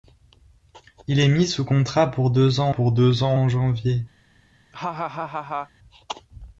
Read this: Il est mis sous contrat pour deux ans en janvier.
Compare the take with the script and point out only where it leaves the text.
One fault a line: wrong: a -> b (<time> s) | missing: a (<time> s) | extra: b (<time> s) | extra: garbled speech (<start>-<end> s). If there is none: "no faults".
extra: pour deux ans (2.7 s)